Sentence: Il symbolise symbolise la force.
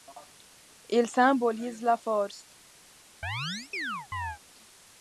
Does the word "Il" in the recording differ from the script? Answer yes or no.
no